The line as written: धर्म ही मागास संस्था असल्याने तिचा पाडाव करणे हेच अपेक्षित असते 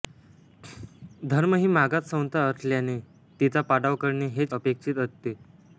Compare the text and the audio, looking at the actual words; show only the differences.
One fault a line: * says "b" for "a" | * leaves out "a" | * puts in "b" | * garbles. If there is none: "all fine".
all fine